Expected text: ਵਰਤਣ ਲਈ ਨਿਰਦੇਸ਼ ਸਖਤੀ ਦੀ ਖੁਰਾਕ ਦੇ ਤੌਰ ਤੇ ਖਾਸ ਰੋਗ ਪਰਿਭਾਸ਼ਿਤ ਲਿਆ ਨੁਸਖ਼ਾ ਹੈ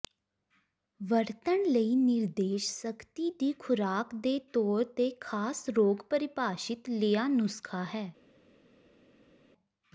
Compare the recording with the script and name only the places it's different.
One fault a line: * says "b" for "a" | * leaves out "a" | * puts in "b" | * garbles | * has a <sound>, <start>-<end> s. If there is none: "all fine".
all fine